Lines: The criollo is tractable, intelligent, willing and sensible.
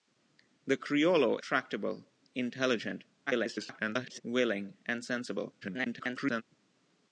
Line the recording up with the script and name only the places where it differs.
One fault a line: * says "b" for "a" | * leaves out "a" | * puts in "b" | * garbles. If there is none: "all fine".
* leaves out "is"
* garbles
* garbles